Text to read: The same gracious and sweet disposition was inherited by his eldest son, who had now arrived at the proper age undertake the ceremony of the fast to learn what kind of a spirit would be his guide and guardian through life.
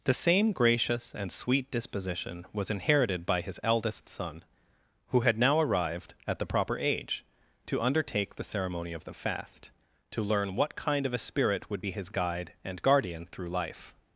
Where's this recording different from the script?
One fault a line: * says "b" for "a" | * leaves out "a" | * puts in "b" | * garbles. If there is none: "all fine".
* puts in "to"